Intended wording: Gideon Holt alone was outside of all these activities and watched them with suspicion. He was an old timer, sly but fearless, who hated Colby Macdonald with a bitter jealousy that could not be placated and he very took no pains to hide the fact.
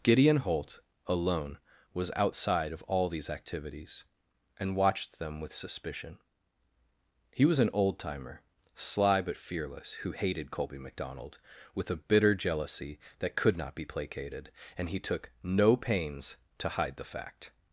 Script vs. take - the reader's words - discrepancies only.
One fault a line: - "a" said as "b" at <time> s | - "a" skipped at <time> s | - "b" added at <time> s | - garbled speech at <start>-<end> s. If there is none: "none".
- "very" skipped at 15.0 s